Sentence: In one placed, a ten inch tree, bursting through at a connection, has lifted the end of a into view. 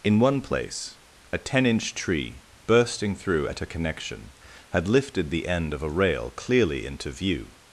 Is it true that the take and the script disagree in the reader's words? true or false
true